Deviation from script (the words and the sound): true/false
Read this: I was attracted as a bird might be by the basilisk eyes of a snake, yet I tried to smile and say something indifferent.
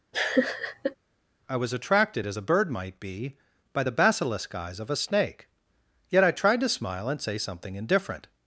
true